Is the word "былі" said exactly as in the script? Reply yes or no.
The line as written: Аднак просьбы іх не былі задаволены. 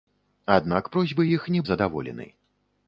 no